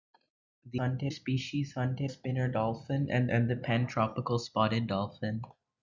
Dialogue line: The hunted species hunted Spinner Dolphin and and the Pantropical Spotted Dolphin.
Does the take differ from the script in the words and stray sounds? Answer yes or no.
no